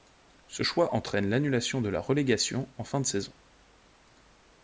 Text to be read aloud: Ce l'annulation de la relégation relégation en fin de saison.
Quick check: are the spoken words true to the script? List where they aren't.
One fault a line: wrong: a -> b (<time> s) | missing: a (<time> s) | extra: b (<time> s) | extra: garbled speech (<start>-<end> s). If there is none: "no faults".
extra: choix entraîne (0.6 s)
missing: relégation (2.7 s)